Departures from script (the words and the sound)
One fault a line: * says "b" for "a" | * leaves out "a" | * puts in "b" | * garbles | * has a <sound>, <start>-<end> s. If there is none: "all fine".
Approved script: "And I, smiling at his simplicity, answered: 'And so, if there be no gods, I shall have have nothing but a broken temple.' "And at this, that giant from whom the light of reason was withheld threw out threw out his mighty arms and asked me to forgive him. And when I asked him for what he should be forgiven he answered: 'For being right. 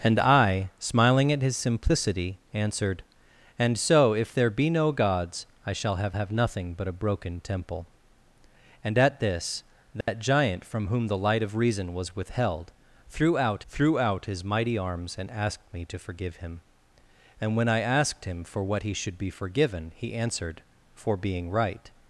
* has a dropout, 10.0-10.1 s